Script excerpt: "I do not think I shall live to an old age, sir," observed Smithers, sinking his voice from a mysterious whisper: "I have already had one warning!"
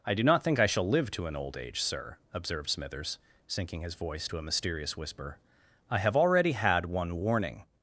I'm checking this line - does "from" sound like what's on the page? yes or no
no